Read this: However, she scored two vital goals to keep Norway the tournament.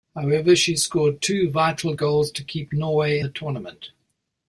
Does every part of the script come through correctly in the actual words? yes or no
yes